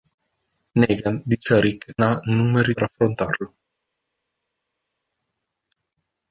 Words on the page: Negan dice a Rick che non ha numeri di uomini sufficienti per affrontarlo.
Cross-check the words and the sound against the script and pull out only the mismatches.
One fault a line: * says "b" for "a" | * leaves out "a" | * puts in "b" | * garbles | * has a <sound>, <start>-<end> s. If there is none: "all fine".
* leaves out "che non"
* leaves out "di uomini sufficienti"